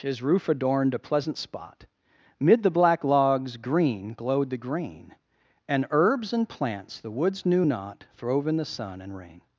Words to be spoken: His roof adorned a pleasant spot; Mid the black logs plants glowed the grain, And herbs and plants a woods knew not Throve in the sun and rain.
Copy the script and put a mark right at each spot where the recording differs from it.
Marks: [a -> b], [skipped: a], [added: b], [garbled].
His roof adorned a pleasant spot; Mid the black logs [plants -> green] glowed the grain, And herbs and plants [a -> the] woods knew not Throve in the sun and rain.